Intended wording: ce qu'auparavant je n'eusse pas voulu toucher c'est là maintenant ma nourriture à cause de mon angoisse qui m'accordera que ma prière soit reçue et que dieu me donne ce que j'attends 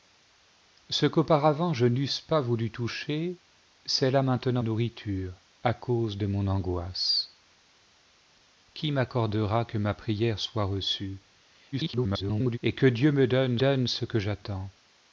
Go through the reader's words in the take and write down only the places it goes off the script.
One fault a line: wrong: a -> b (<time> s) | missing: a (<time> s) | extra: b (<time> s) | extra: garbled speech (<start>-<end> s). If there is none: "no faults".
missing: ma (4.6 s)
extra: garbled speech (11.7-12.6 s)
extra: donne (13.6 s)